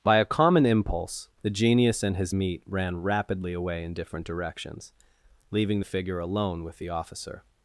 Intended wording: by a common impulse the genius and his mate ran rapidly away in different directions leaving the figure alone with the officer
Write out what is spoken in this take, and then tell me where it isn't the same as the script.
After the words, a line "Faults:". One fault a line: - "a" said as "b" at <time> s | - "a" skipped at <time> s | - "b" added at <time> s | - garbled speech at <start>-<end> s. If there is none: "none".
by a common impulse the genius and his meat ran rapidly away in different directions leaving the figure alone with the officer
Faults:
- "mate" said as "meat" at 2.3 s